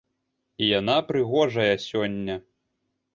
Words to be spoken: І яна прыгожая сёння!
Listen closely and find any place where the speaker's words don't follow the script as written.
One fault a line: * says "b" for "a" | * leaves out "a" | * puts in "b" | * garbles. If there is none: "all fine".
all fine